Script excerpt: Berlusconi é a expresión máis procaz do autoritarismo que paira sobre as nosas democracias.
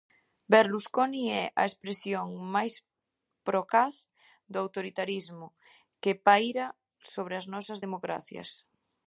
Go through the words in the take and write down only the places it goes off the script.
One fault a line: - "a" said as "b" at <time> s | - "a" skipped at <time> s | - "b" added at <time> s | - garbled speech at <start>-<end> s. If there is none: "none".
none